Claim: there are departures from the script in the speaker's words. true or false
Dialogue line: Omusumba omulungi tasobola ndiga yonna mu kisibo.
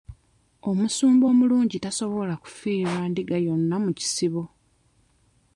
true